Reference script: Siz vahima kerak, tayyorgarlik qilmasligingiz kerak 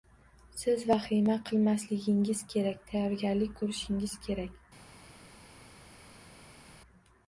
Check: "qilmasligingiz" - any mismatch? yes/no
yes